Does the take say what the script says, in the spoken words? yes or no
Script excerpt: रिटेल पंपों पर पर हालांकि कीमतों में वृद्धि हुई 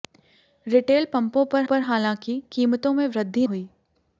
yes